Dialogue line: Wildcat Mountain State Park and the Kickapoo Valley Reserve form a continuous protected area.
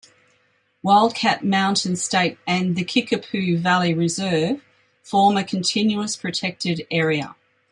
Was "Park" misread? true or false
true